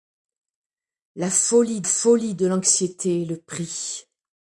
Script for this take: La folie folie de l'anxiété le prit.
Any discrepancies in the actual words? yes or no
no